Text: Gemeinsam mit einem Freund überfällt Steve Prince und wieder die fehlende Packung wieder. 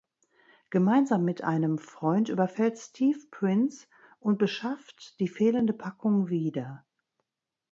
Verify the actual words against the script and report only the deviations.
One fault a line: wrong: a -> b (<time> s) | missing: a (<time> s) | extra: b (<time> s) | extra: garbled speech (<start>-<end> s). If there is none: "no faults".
wrong: wieder -> beschafft (4.4 s)